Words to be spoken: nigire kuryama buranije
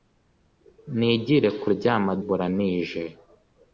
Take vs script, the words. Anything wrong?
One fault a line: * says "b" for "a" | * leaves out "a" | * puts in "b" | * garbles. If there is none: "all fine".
all fine